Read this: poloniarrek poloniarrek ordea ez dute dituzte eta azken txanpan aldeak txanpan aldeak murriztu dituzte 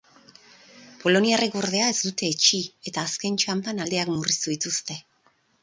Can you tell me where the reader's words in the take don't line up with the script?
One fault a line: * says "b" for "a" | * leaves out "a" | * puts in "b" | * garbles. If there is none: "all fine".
* leaves out "poloniarrek"
* says "etsi" for "dituzte"
* leaves out "txanpan aldeak"